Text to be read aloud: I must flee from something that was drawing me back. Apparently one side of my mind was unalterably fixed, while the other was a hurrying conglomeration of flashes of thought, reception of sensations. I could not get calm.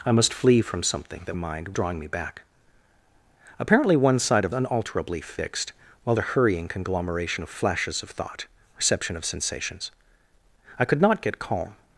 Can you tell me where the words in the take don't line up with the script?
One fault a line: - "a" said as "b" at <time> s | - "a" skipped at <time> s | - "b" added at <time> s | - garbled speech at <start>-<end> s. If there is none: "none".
- "was" said as "mind" at 1.3 s
- "my mind was" skipped at 4.5 s
- "the other was" skipped at 6.2 s